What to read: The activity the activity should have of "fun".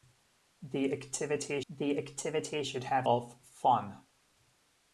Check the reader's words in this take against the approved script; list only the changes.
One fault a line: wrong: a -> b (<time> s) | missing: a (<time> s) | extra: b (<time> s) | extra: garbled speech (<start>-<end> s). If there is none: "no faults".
no faults